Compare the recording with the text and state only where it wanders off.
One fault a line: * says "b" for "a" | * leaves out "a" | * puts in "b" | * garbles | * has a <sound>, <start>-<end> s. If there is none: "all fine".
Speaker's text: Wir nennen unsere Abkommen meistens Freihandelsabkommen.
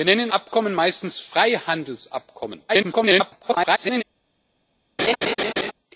* leaves out "unsere"
* garbles
* has a laugh, 5.0-5.7 s